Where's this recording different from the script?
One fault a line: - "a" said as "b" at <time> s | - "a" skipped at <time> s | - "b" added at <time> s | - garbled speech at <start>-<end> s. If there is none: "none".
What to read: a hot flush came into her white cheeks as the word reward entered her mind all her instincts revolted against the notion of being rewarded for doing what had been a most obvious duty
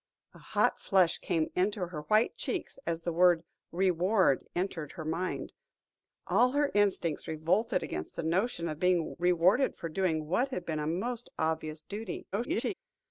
- garbled speech at 12.3-12.7 s